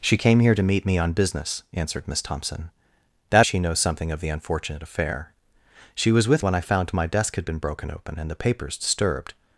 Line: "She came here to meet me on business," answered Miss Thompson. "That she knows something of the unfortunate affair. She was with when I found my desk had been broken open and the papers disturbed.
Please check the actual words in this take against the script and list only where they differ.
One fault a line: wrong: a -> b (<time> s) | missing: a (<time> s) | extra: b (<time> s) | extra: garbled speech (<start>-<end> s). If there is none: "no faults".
no faults